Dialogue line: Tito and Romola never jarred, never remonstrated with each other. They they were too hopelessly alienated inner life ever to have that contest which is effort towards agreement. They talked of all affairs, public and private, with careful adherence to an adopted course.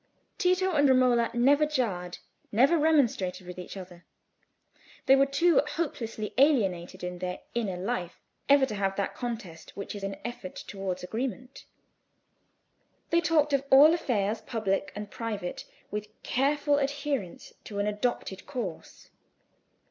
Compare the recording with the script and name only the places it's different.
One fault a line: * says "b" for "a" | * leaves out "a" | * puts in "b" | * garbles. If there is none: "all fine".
* leaves out "they"
* puts in "in their"
* puts in "an"